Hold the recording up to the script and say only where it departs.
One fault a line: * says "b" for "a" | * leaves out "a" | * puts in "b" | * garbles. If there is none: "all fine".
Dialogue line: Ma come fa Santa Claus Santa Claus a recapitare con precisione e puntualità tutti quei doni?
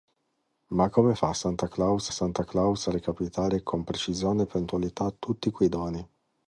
all fine